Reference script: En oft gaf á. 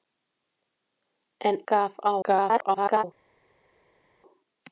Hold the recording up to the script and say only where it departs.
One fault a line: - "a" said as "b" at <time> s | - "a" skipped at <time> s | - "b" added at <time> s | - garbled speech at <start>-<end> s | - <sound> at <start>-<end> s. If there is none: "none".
- "oft" skipped at 1.6 s
- garbled speech at 2.2-3.0 s